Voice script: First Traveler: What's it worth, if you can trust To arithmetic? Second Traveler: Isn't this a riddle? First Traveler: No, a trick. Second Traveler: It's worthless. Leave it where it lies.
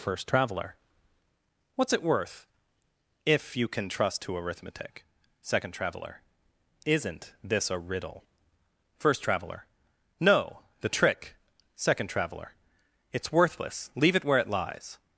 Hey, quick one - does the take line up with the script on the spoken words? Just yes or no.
no